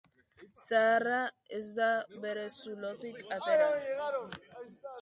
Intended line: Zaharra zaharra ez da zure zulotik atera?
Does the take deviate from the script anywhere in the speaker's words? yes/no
yes